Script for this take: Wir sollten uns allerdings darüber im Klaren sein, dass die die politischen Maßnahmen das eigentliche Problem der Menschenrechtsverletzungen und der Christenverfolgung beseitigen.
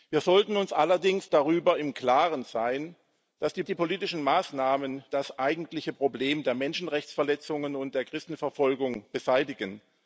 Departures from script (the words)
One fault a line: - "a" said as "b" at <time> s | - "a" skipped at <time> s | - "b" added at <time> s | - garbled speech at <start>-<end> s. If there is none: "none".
none